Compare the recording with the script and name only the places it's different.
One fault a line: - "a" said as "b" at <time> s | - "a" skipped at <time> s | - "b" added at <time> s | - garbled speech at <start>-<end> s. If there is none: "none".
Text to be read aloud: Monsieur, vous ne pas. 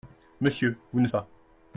none